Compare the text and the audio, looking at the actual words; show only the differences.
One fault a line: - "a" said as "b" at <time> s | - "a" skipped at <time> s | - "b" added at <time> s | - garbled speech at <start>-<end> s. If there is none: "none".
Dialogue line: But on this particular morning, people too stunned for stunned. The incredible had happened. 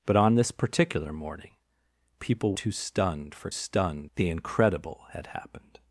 none